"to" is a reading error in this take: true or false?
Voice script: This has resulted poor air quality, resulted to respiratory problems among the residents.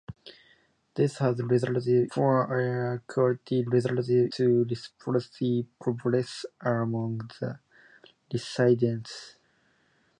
false